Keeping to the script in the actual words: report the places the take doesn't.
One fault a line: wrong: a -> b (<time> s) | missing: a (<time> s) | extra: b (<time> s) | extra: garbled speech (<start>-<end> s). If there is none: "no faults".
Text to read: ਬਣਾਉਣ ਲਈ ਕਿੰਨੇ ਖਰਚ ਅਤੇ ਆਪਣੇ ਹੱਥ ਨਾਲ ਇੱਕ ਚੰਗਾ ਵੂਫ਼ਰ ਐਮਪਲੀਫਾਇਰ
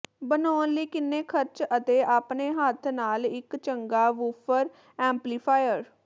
no faults